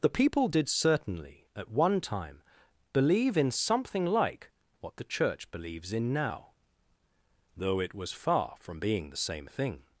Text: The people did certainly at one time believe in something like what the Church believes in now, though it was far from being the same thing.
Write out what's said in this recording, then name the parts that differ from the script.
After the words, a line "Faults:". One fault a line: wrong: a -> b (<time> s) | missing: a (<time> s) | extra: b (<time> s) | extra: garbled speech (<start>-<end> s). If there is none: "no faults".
The people did certainly at one time believe in something like what the Church believes in now, though it was far from being the same thing.
Faults:
no faults